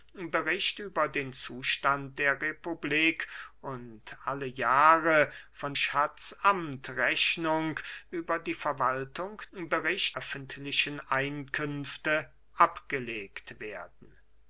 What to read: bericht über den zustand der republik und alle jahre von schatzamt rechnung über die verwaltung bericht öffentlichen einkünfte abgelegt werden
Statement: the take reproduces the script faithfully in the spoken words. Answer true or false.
true